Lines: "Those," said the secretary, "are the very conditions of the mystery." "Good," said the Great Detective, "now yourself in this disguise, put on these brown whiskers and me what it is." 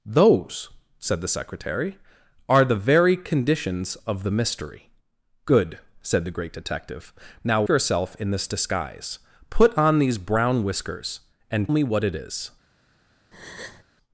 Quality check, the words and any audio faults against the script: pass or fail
fail